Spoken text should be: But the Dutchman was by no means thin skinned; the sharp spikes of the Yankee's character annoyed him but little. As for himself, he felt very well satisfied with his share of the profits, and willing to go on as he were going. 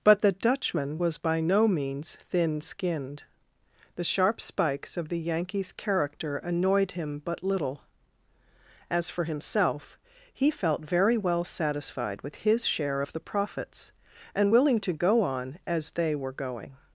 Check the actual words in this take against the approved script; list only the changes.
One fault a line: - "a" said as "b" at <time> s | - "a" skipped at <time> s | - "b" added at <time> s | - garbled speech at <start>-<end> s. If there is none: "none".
- "he" said as "they" at 15.9 s